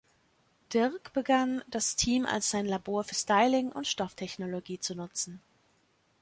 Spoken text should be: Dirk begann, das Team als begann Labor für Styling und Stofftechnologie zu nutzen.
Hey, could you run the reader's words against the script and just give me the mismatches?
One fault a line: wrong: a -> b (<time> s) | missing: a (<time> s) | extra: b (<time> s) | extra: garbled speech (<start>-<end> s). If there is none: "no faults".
wrong: begann -> sein (2.5 s)